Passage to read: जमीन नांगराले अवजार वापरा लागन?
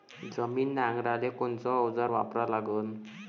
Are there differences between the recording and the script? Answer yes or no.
yes